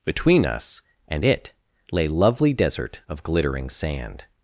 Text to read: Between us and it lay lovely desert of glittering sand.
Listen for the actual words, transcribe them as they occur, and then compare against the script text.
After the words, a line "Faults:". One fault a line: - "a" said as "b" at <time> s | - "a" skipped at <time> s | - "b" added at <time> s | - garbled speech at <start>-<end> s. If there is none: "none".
Between us and it lay lovely desert of glittering sand.
Faults:
none